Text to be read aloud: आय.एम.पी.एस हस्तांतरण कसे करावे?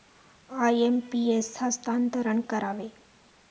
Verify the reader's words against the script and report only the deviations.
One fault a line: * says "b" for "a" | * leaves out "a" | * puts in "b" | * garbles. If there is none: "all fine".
* leaves out "कसे"